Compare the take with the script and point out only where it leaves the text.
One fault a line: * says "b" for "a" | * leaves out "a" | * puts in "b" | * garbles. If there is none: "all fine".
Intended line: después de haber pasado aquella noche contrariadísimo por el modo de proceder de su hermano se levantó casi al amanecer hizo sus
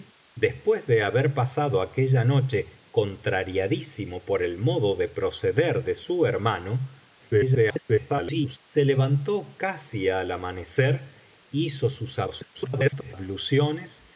* garbles
* garbles